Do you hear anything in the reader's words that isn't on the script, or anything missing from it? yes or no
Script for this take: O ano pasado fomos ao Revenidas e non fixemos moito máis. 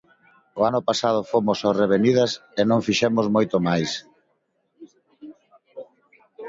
no